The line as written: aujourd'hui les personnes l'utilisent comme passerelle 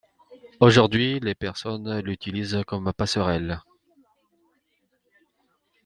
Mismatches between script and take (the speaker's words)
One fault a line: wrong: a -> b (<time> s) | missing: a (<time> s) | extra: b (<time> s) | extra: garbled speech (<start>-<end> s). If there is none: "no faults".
no faults